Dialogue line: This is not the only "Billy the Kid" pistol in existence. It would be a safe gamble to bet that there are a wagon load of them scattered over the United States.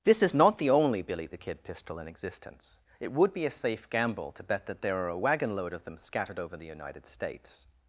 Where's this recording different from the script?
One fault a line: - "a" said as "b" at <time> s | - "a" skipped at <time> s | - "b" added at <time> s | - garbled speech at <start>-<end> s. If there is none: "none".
none